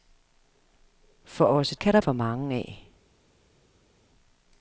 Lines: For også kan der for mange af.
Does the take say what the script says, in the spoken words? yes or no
yes